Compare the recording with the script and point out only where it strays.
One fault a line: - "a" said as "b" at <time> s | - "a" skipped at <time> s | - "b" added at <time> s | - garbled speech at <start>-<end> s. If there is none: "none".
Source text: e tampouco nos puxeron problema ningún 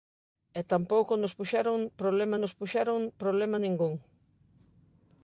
- "nos puxeron problema" added at 2.4 s